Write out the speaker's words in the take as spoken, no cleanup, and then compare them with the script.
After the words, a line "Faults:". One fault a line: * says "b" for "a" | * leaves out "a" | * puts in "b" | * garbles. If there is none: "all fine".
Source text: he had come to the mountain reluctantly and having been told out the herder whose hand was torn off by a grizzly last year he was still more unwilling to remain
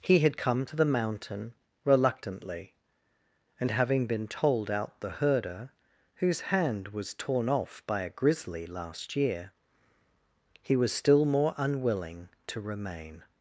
he had come to the mountain reluctantly and having been told out the herder whose hand was torn off by a grizzly last year he was still more unwilling to remain
Faults:
all fine